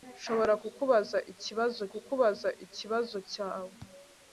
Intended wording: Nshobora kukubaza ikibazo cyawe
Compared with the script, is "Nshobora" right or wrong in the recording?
right